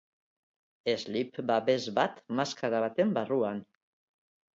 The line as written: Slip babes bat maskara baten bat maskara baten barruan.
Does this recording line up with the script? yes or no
no